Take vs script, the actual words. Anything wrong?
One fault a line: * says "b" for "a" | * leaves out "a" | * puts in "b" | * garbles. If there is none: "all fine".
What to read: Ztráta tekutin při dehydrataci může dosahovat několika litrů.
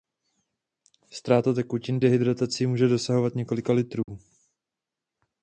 * leaves out "při"